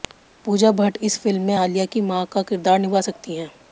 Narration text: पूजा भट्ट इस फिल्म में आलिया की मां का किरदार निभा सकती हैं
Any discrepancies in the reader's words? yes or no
no